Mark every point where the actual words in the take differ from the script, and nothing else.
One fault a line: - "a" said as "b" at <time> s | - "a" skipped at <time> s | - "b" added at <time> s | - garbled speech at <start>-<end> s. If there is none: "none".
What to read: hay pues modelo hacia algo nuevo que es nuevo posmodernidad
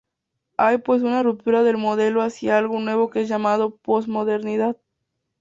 - "una ruptura del" added at 1.0 s
- "nuevo" said as "llamado" at 3.3 s